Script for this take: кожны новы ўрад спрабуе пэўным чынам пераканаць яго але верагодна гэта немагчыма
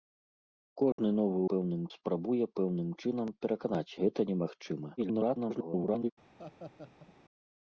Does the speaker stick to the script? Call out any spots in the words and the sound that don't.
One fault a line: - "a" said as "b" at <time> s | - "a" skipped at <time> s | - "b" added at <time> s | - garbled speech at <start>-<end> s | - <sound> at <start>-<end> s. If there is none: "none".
- dropout at 0.9-1.0 s
- "ўрад" said as "пэўным" at 1.5 s
- "яго але верагодна" skipped at 4.0 s
- garbled speech at 5.0-6.1 s
- laugh at 6.4-7.1 s